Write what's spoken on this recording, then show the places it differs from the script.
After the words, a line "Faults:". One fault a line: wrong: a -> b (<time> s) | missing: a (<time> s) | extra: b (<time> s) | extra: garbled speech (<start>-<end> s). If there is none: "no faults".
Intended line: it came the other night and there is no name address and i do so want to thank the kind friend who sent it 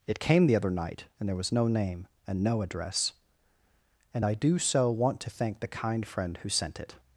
it came the other night and there was no name and no address and i do so want to thank the kind friend who sent it
Faults:
wrong: is -> was (1.4 s)
extra: and no (2.3 s)